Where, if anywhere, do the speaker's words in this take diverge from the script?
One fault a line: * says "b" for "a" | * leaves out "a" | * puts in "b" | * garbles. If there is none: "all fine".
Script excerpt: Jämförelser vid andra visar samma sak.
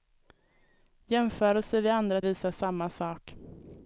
all fine